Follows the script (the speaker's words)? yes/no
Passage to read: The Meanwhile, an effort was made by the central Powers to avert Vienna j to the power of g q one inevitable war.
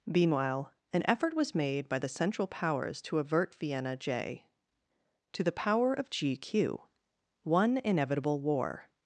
no